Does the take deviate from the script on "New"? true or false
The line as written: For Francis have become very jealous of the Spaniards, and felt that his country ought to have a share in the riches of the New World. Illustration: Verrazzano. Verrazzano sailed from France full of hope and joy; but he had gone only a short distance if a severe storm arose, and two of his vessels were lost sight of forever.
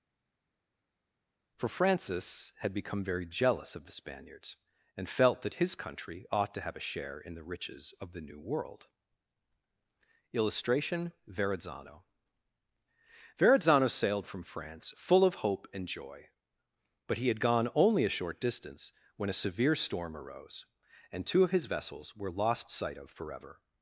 false